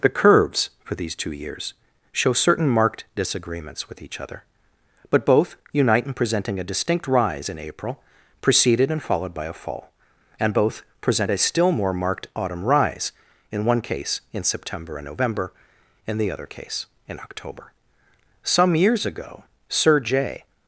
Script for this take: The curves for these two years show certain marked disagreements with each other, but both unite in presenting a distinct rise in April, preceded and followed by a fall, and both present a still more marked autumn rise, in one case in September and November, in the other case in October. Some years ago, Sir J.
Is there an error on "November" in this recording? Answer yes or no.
no